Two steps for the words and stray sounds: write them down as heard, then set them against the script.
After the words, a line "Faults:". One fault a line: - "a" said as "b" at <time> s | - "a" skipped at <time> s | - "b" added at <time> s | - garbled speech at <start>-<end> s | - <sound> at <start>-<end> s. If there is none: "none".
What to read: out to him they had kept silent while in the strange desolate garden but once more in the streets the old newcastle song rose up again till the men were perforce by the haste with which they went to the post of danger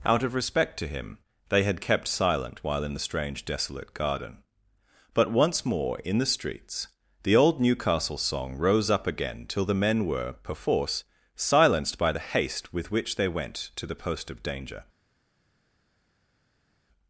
out of respect to him they had kept silent while in the strange desolate garden but once more in the streets the old newcastle song rose up again till the men were perforce silenced by the haste with which they went to the post of danger
Faults:
- "of respect" added at 0.2 s
- "silenced" added at 11.3 s